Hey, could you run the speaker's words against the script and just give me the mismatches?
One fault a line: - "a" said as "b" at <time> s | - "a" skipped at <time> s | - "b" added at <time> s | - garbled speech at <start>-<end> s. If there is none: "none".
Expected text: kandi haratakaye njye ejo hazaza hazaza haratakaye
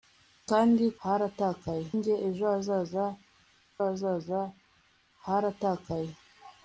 none